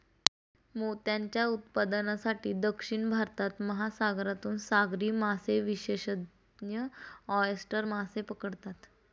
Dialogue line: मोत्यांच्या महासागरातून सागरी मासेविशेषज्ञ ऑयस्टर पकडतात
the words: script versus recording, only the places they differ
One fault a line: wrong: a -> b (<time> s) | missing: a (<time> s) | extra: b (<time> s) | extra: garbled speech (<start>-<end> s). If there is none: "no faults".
extra: उत्पादनासाठी दक्षिण भारतात (1.5 s)
extra: मासे (7.9 s)